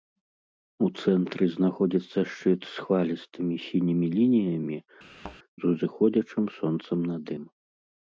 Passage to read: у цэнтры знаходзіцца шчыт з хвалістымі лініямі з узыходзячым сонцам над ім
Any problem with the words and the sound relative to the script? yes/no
yes